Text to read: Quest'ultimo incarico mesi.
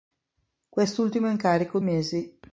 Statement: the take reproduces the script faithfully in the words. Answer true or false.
true